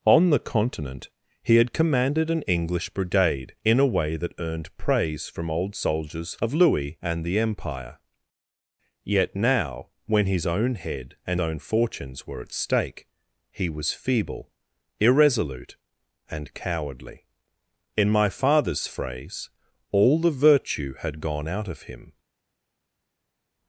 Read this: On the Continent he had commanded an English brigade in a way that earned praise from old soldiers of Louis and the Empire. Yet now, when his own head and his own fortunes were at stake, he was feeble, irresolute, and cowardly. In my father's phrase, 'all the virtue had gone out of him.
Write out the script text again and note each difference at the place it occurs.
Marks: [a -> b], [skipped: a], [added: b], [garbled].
On the Continent he had commanded an English brigade in a way that earned praise from old soldiers of Louis and the Empire. Yet now, when his own head and [skipped: his] own fortunes were at stake, he was feeble, irresolute, and cowardly. In my father's phrase, 'all the virtue had gone out of him.